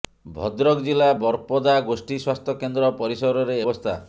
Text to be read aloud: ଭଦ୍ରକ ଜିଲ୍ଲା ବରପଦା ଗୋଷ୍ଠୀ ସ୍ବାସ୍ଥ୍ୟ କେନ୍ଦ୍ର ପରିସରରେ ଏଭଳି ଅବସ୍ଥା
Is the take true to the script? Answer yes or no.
no